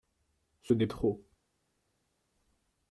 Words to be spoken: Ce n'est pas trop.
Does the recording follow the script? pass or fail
fail